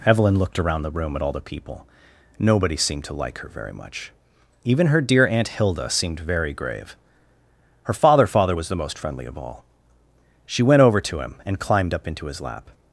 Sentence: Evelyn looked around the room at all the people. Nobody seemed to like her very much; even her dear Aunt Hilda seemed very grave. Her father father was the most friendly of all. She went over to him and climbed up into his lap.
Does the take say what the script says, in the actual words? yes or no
yes